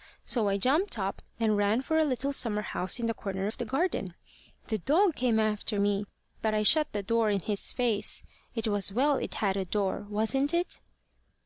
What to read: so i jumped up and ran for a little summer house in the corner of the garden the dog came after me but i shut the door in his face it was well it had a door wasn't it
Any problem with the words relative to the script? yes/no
no